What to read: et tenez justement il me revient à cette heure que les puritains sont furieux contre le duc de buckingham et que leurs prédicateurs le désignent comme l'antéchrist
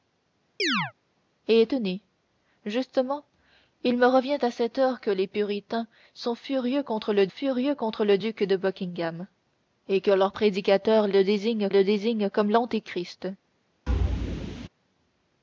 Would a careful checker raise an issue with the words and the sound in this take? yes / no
yes